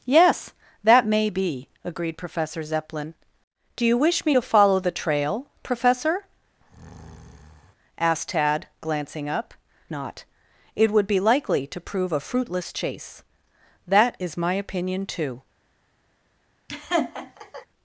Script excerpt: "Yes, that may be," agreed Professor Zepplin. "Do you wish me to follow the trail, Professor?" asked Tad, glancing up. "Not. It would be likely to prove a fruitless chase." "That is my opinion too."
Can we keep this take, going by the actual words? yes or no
yes